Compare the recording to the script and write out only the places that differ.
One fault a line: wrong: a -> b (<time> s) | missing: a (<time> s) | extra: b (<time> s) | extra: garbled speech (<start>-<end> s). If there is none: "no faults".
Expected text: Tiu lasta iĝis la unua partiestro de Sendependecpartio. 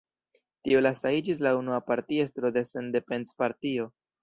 no faults